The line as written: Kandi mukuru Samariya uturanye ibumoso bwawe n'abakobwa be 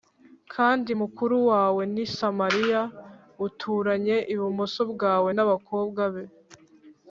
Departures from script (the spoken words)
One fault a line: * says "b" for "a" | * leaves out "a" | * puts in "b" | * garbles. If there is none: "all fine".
* puts in "wawe ni"